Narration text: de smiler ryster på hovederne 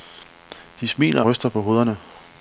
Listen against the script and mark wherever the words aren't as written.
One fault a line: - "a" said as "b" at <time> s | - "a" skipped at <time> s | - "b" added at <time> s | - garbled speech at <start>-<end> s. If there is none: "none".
none